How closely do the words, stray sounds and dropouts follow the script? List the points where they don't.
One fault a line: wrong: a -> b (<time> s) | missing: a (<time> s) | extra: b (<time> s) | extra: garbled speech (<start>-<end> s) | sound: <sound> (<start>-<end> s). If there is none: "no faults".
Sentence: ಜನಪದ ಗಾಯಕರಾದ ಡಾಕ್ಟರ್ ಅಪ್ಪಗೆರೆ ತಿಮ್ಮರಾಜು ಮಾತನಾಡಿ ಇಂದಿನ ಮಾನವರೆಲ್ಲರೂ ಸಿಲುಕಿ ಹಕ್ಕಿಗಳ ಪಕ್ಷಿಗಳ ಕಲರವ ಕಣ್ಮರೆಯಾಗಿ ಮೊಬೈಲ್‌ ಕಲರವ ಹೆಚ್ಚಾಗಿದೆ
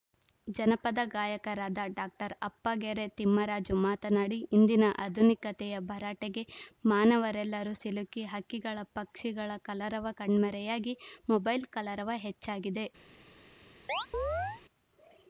extra: ಆಧುನಿಕತೆಯ ಭರಾಟೆಗೆ (5.0 s)
sound: chirp (13.9-14.6 s)